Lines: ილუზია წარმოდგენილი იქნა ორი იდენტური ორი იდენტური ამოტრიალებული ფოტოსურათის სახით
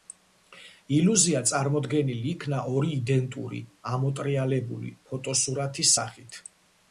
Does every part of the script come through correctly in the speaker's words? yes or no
no